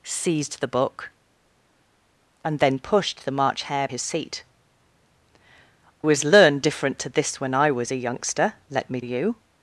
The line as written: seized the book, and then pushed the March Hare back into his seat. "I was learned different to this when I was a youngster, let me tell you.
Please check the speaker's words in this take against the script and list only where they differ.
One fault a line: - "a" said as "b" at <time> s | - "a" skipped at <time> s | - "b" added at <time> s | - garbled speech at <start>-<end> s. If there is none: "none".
- "back into" skipped at 3.9 s
- "I" skipped at 4.4 s
- "tell" skipped at 9.0 s